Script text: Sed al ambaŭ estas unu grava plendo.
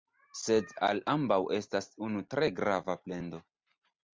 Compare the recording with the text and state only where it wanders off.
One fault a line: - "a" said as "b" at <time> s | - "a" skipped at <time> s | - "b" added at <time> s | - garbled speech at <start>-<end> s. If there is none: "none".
- "tre" added at 2.4 s